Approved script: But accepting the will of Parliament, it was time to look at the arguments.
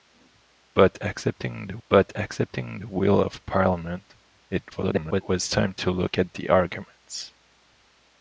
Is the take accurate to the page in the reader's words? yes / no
no